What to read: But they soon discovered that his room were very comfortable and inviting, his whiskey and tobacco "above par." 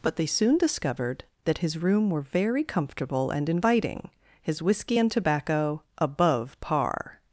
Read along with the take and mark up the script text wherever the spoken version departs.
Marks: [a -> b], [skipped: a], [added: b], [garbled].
But they soon discovered that his room were very comfortable and inviting, his whiskey and tobacco "above par."